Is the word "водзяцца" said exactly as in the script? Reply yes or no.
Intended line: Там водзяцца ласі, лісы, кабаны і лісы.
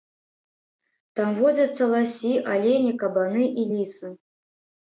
yes